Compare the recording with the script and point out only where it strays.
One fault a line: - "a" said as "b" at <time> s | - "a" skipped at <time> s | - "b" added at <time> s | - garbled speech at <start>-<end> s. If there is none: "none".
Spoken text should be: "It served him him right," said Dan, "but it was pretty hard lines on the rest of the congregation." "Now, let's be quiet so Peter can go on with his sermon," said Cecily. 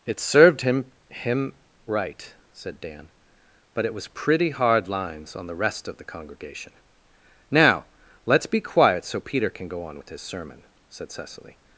none